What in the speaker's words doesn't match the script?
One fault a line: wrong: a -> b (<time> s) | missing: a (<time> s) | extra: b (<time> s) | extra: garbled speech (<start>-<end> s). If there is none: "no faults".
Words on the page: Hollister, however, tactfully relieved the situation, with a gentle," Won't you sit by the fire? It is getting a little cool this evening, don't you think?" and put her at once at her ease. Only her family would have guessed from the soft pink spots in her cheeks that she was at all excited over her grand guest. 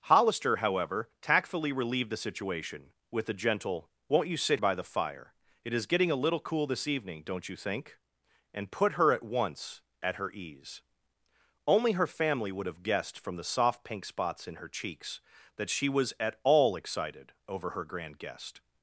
no faults